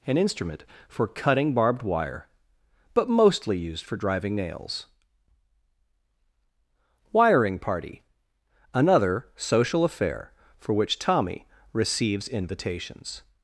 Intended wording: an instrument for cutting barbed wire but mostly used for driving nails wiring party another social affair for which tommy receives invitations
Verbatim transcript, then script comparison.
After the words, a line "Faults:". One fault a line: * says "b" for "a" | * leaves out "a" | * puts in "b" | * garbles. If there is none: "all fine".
an instrument for cutting barbed wire but mostly used for driving nails wiring party another social affair for which tommy receives invitations
Faults:
all fine